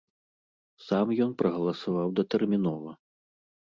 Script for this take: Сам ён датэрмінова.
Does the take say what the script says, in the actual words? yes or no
no